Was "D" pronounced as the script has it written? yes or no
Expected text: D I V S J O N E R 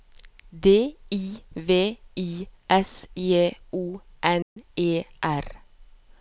yes